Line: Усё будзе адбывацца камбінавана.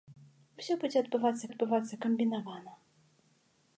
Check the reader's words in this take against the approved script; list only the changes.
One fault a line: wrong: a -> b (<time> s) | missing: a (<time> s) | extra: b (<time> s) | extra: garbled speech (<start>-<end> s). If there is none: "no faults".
extra: адбывацца (1.5 s)